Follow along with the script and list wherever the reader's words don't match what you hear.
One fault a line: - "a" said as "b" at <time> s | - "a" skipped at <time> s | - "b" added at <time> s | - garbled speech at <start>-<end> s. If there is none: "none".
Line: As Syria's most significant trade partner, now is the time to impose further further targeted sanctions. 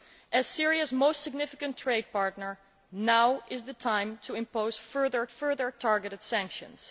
none